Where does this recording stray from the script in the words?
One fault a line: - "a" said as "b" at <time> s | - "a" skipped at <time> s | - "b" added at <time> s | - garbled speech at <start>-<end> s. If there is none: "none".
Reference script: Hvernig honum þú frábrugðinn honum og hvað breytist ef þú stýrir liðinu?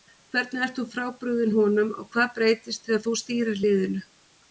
- "honum" said as "ert" at 0.7 s
- "ef" said as "þegar" at 2.9 s